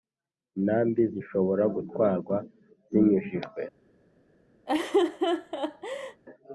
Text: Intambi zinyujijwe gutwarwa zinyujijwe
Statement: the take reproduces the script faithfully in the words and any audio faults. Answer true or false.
false